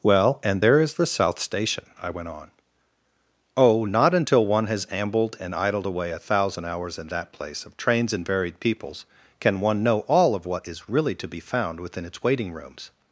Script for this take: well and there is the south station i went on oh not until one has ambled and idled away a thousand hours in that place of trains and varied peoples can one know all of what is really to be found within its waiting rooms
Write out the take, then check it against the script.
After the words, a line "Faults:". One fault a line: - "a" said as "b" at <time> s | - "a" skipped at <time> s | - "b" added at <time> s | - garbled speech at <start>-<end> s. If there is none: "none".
well and there is the south station i went on oh not until one has ambled and idled away a thousand hours in that place of trains and varied peoples can one know all of what is really to be found within its waiting rooms
Faults:
none